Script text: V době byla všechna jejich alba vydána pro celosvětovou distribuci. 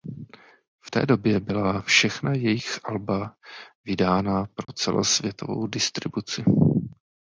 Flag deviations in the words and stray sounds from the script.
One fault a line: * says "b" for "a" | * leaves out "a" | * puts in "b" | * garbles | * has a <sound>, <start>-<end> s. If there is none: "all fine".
* puts in "té"
* has a dropout, 4.6-4.7 s